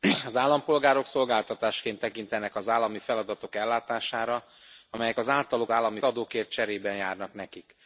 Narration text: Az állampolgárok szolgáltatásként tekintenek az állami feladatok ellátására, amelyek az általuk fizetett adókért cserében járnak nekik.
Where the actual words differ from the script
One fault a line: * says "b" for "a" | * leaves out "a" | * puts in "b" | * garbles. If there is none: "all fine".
* says "állami" for "fizetett"